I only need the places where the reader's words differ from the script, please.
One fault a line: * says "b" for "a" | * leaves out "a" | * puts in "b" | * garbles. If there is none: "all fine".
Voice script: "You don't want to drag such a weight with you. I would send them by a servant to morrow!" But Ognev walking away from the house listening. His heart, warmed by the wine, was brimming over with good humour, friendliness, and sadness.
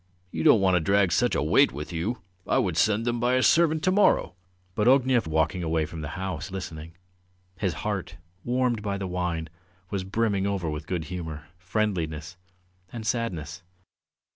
all fine